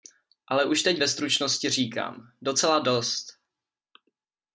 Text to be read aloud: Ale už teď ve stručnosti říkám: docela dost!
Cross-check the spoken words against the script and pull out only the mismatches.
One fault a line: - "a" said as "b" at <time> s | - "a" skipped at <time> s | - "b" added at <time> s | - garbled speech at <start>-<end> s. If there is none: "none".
none